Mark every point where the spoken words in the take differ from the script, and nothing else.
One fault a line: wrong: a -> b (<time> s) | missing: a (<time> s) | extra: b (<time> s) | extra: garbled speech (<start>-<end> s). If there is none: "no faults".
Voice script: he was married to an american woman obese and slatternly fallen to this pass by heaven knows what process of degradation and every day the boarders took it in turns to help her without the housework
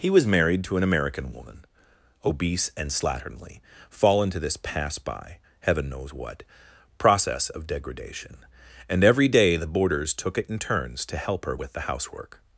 wrong: without -> with (11.5 s)